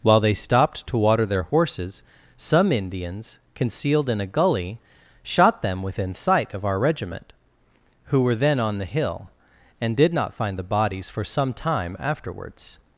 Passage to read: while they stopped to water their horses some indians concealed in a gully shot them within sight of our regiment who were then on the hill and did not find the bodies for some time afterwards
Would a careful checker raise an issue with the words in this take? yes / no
no